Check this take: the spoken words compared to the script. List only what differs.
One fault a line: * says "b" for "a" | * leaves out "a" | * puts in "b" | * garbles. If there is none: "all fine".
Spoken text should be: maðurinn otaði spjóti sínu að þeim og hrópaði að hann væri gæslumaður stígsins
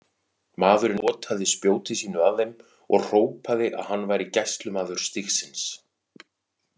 all fine